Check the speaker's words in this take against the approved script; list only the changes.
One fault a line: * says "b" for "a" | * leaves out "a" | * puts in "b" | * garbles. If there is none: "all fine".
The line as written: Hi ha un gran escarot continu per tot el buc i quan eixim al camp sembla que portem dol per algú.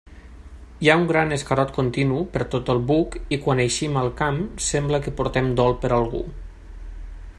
all fine